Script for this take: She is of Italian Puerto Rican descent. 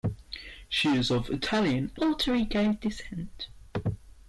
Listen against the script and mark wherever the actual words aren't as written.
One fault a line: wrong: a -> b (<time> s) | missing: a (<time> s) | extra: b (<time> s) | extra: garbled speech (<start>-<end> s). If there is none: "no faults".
no faults